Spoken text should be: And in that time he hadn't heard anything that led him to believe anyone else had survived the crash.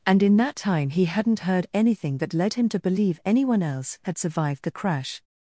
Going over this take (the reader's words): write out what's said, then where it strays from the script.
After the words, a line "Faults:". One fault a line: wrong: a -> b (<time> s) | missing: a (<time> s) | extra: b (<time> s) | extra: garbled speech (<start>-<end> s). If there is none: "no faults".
And in that time he hadn't heard anything that led him to believe anyone else had survived the crash.
Faults:
no faults